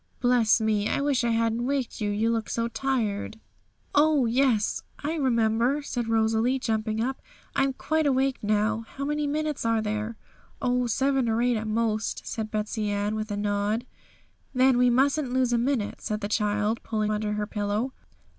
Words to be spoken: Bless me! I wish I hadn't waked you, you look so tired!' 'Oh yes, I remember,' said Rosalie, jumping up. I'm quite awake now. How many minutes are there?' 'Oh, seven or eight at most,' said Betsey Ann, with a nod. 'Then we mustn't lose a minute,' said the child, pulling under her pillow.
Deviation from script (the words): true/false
false